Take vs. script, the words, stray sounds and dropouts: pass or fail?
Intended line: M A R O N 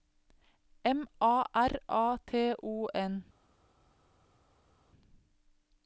fail